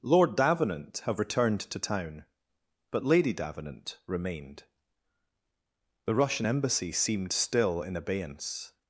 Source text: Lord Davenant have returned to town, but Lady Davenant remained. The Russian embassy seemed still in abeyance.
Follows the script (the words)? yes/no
yes